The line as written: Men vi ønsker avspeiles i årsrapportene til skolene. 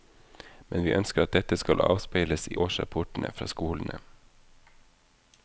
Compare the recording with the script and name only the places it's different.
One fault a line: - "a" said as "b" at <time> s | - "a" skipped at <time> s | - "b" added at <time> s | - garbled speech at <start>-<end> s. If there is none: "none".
- "at dette skal" added at 1.2 s
- "til" said as "fra" at 3.3 s